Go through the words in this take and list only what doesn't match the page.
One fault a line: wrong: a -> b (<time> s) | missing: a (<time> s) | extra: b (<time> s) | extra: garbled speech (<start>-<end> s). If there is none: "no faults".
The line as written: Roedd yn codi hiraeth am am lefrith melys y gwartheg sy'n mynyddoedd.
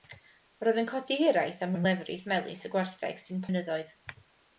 no faults